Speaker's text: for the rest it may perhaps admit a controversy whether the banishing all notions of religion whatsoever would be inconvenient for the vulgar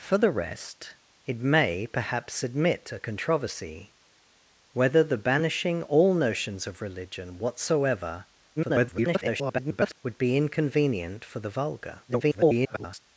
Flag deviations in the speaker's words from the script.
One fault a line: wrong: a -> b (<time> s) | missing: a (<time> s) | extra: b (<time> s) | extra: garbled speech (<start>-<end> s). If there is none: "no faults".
extra: garbled speech (8.6-10.0 s)
extra: garbled speech (12.1-13.0 s)